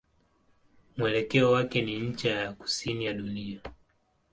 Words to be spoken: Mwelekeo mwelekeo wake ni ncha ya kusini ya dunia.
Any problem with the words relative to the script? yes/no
yes